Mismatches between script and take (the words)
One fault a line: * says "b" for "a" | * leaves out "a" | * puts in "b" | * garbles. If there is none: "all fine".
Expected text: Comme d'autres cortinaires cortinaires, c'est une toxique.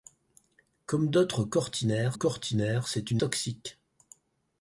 all fine